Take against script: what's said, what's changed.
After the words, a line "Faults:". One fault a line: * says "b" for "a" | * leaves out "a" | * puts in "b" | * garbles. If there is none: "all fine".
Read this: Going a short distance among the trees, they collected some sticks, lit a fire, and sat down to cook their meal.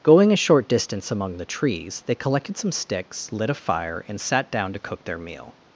Going a short distance among the trees, they collected some sticks, lit a fire, and sat down to cook their meal.
Faults:
all fine